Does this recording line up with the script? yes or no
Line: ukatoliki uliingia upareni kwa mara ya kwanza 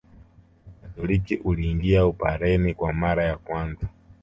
yes